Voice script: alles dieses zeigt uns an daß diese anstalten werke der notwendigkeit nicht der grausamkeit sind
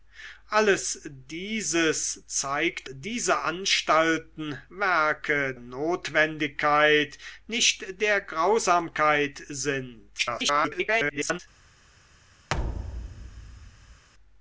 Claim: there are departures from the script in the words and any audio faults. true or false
true